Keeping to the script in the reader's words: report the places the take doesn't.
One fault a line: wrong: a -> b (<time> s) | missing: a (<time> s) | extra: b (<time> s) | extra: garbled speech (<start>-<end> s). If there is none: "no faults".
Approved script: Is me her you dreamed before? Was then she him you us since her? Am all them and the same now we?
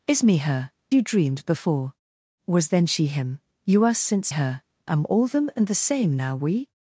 no faults